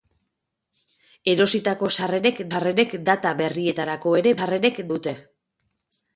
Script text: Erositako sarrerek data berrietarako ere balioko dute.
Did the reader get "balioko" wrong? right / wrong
wrong